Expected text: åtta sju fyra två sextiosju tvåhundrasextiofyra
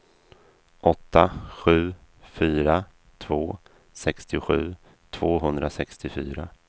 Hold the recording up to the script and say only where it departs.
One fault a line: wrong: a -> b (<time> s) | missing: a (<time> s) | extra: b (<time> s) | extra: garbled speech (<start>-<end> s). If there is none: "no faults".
no faults